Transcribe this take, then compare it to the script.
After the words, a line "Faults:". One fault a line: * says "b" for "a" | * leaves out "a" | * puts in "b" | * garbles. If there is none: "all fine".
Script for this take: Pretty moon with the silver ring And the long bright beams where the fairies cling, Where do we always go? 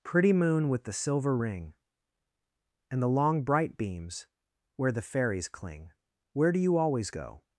Pretty moon with the silver ring And the long bright beams where the fairies cling, Where do you always go?
Faults:
* says "you" for "we"